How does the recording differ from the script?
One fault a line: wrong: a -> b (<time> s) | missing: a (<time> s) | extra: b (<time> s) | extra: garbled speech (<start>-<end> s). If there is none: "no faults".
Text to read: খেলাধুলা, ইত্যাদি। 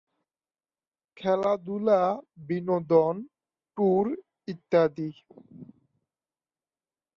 extra: বিনোদন ট্যুর (2.5 s)